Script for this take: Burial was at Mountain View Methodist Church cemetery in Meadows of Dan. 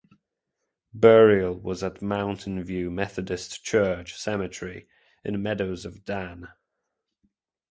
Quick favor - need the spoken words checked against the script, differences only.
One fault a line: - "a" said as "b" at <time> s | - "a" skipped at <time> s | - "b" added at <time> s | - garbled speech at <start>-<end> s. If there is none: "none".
none